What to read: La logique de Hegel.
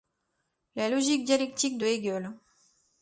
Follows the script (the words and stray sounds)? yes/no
no